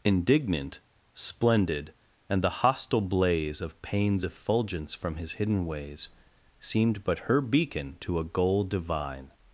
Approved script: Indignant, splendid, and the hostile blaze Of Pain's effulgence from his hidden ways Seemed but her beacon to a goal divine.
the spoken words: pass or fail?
pass